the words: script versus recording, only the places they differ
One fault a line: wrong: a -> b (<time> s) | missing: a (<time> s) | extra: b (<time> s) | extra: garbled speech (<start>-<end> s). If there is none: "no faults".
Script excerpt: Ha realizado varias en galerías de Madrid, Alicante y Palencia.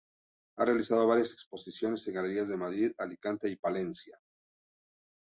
extra: exposiciones (1.3 s)